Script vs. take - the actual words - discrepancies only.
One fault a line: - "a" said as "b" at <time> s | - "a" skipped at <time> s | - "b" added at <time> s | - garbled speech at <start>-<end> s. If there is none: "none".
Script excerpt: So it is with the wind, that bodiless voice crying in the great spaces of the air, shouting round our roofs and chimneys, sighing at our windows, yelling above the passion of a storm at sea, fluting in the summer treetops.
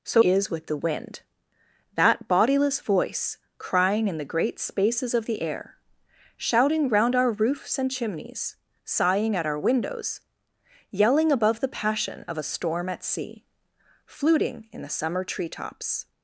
- "it" skipped at 0.2 s